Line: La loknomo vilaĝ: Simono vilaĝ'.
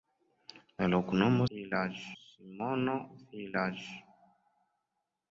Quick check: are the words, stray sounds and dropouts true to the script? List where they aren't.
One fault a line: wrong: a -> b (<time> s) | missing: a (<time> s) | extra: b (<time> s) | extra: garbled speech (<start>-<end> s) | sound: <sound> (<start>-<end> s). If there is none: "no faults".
no faults